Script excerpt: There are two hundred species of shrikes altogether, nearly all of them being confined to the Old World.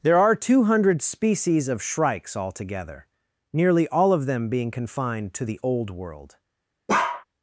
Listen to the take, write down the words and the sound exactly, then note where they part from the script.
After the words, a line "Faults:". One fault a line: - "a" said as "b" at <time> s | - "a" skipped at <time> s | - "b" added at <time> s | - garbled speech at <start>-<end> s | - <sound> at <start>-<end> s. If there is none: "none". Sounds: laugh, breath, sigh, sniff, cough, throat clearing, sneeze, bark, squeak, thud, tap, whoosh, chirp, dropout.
There are two hundred species of shrikes altogether, nearly all of them being confined to the Old World.
Faults:
- bark at 6.9-7.2 s